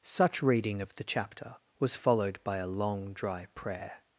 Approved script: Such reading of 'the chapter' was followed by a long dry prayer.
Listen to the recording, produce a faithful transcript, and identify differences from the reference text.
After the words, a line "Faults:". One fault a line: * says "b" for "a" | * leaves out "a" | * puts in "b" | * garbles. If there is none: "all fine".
Such reading of 'the chapter' was followed by a long dry prayer.
Faults:
all fine